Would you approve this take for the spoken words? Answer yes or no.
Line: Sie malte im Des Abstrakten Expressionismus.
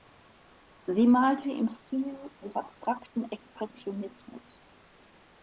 no